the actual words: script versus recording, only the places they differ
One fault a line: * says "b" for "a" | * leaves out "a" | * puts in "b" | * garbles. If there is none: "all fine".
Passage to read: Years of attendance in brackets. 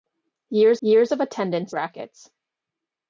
* puts in "years"
* leaves out "in"